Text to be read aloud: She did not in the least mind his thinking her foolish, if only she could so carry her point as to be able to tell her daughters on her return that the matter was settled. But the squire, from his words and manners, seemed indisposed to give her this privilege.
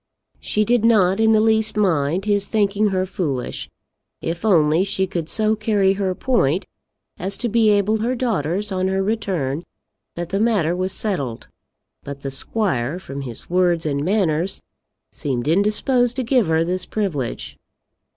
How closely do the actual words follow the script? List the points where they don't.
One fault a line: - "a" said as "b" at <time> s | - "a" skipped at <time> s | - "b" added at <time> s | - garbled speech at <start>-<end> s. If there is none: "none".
- "to tell" skipped at 8.0 s